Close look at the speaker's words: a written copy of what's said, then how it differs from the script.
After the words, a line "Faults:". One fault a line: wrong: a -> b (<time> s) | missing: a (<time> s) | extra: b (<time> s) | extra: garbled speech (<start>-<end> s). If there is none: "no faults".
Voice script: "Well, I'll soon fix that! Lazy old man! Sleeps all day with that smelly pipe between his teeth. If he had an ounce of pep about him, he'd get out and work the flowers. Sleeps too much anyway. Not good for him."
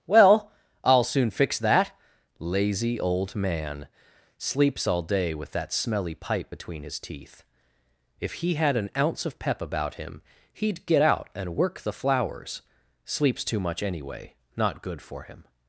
"Well, I'll soon fix that! Lazy old man! Sleeps all day with that smelly pipe between his teeth. If he had an ounce of pep about him, he'd get out and work the flowers. Sleeps too much anyway. Not good for him."
Faults:
no faults